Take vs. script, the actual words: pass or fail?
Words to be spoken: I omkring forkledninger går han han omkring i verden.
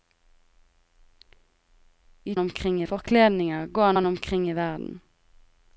pass